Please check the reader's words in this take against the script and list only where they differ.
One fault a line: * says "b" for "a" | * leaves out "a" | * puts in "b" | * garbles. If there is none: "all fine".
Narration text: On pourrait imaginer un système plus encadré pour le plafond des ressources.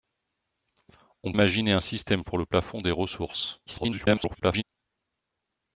* leaves out "pourrait"
* leaves out "plus encadré"
* garbles